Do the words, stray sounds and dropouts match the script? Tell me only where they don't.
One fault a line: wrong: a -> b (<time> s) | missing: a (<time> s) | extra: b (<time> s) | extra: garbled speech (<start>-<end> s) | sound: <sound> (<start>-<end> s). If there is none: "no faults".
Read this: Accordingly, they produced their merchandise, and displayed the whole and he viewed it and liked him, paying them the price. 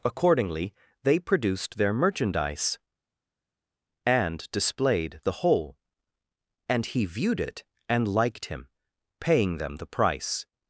no faults